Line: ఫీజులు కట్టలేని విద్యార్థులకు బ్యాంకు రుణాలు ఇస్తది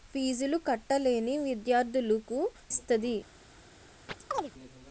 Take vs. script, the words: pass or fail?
fail